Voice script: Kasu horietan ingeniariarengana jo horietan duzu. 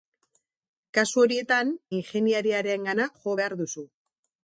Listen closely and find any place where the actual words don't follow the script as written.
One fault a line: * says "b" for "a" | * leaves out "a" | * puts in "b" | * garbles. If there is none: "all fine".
* says "behar" for "horietan"